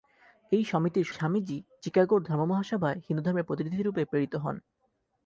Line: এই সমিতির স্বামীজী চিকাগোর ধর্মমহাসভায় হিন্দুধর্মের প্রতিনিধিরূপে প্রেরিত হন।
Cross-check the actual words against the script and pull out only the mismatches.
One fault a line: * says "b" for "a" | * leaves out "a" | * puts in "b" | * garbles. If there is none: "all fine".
all fine